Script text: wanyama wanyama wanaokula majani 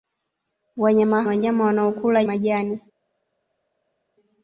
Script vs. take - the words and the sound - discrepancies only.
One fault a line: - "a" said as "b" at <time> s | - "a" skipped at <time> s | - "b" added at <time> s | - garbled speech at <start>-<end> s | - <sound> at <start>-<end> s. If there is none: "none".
none